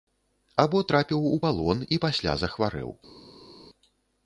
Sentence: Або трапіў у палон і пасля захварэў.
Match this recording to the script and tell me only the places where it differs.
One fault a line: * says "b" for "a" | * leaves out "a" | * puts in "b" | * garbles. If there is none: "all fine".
all fine